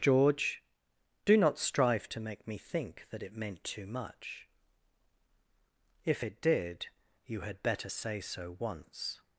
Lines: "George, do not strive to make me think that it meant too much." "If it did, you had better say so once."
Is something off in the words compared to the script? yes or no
no